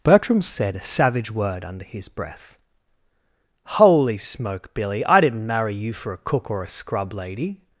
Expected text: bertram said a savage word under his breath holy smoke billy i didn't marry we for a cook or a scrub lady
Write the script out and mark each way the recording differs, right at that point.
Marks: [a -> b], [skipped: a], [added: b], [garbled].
bertram said a savage word under his breath holy smoke billy i didn't marry [we -> you] for a cook or a scrub lady